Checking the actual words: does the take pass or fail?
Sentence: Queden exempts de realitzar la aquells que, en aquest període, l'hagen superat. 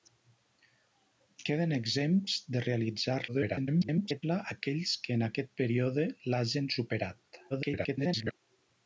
fail